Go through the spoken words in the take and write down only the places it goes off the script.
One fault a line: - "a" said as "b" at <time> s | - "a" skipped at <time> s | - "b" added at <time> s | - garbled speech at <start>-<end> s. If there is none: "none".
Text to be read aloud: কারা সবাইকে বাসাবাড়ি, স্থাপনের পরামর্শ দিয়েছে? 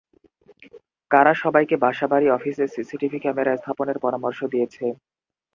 - "অফিসে সিসিটিভি ক্যামেরা" added at 2.3 s